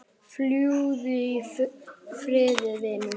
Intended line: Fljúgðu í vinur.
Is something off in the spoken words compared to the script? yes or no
yes